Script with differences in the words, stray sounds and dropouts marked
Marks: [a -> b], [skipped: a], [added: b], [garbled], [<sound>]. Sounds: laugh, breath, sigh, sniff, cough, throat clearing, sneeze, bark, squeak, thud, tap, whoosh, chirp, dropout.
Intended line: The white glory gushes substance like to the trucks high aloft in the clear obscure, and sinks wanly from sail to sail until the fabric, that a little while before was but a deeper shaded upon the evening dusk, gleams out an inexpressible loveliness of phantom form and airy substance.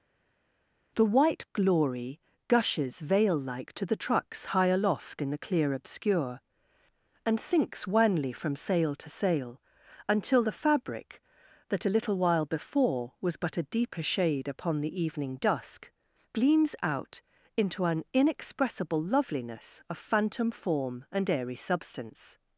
The white glory gushes [substance -> veil] like to the trucks high aloft in the clear obscure, and sinks wanly from sail to sail until the fabric, that a little while before was but a deeper [shaded -> shade] upon the evening dusk, gleams out [added: into] an inexpressible loveliness of phantom form and airy substance.